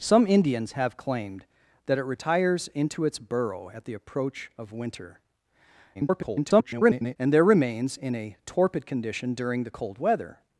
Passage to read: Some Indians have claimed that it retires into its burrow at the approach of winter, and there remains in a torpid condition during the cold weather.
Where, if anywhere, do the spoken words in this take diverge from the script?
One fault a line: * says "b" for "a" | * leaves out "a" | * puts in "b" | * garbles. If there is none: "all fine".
* garbles